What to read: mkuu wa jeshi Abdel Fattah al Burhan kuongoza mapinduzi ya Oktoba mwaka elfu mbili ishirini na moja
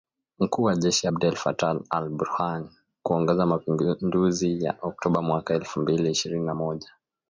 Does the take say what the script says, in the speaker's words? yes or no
yes